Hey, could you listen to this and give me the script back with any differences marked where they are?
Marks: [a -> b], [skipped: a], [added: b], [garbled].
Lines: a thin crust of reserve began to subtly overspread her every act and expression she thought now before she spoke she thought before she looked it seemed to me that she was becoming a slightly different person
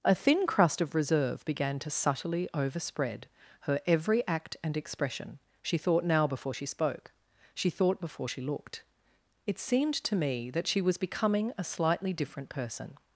a thin crust of reserve began to subtly overspread her every act and expression she thought now before she spoke she thought before she looked it seemed to me that she was becoming a slightly different person